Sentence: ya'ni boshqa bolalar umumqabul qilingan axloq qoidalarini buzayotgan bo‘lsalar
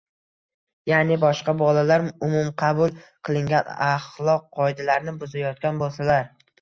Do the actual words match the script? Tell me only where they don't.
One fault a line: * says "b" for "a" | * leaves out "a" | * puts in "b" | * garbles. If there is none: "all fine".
all fine